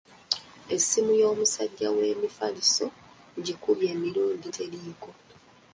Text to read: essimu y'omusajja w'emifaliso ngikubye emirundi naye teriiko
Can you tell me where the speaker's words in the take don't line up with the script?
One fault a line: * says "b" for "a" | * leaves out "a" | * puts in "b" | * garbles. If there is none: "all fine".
* leaves out "naye"